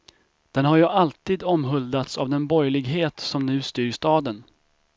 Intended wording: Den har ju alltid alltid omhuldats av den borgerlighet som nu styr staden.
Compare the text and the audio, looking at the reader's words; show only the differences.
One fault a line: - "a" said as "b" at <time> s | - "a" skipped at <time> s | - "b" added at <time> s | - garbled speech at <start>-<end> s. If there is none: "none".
- "alltid" skipped at 1.4 s